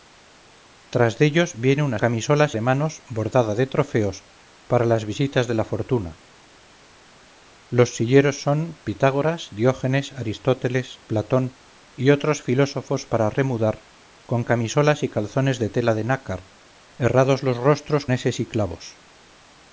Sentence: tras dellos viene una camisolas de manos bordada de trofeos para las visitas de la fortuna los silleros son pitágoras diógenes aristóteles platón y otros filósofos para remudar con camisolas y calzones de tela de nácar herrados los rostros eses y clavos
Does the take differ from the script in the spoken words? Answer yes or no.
no